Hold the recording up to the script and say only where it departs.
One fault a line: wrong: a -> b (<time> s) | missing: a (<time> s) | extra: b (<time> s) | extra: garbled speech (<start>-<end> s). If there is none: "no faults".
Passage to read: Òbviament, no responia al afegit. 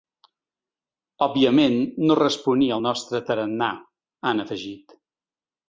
extra: nostre tarannà han (2.9 s)